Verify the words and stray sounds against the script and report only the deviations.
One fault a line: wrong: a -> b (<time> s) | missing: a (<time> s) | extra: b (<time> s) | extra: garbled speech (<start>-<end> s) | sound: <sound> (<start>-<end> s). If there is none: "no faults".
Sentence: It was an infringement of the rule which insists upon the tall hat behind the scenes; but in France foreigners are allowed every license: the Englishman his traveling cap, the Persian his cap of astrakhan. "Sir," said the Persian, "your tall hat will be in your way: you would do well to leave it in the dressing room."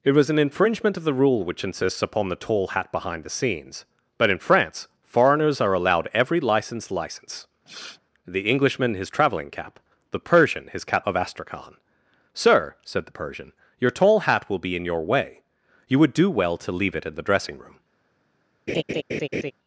extra: license (6.9 s)
sound: sniff (7.7-8.0 s)
sound: laugh (18.7-19.5 s)